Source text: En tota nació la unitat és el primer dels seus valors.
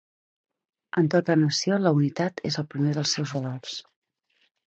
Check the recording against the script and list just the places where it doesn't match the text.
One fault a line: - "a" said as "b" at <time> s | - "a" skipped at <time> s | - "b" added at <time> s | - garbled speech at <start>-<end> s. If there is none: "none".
none